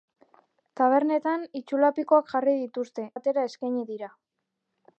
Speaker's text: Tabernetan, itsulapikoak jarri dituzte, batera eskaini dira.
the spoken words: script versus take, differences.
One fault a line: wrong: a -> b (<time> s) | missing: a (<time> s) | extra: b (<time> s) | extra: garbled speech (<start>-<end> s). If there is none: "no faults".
no faults